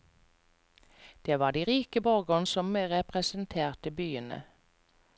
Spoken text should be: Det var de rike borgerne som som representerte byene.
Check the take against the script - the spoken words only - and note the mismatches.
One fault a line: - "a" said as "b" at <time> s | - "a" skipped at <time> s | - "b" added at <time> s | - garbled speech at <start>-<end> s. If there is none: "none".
- "som" skipped at 2.8 s